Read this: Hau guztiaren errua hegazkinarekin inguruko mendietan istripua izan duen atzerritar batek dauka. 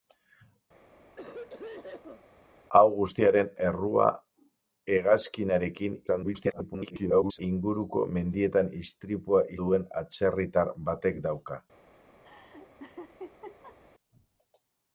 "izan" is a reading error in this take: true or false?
true